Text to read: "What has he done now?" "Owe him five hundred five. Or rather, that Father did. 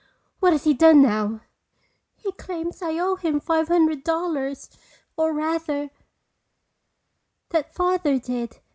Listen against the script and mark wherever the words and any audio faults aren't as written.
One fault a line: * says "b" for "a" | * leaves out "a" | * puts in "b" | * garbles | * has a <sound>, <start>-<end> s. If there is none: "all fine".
* puts in "He claims I"
* says "dollars" for "five"